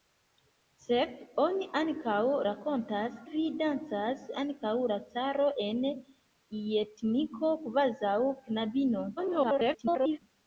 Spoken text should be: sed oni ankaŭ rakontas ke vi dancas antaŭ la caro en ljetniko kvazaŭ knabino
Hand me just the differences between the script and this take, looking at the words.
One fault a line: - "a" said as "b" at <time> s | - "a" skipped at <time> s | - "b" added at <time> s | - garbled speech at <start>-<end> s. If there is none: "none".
- "ke" skipped at 3.2 s
- garbled speech at 9.2-10.2 s